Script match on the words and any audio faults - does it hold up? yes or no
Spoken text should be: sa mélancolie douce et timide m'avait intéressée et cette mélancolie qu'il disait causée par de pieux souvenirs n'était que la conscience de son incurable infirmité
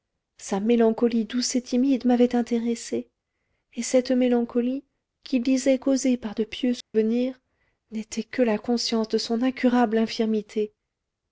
no